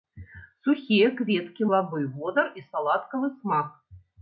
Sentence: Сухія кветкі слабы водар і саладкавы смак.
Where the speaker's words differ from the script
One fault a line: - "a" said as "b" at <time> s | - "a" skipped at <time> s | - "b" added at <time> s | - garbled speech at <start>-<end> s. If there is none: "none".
none